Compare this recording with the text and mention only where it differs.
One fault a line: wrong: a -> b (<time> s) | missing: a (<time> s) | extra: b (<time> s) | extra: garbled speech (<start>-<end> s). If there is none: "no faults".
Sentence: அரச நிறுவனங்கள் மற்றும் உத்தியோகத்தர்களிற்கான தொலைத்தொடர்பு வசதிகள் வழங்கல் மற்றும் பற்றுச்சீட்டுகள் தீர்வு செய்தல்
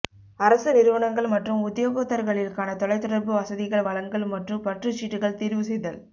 no faults